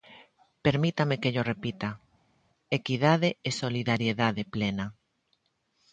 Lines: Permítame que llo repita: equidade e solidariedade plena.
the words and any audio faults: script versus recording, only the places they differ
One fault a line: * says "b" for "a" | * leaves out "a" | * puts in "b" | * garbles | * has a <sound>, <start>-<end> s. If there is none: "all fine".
all fine